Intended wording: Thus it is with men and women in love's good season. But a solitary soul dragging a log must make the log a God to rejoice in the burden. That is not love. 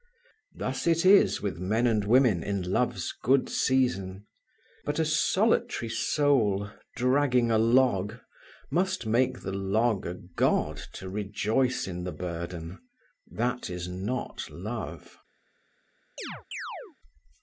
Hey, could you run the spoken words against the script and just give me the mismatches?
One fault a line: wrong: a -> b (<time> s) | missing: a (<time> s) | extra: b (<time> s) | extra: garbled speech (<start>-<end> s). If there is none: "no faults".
no faults